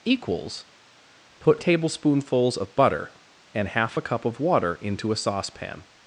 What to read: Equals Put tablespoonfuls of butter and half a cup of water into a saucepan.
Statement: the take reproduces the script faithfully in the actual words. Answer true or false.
true